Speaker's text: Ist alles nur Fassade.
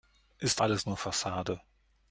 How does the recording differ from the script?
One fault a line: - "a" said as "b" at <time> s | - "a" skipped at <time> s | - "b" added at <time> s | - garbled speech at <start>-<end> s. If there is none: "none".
none